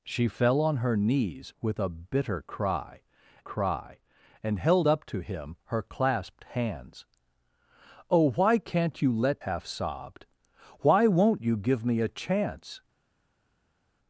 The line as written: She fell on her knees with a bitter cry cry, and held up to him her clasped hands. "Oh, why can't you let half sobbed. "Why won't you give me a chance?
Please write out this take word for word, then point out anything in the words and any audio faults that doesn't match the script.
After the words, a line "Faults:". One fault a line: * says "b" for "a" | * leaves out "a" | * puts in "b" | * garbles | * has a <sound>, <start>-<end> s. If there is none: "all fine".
She fell on her knees with a bitter cry cry, and held up to him her clasped hands. "Oh, why can't you let half sobbed. "Why won't you give me a chance?
Faults:
all fine